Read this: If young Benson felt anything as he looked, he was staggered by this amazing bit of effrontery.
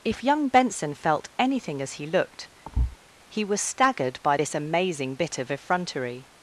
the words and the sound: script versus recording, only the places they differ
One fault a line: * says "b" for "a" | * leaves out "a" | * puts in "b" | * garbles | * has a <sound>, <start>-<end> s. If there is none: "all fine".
* has a thud, 2.6-3.0 s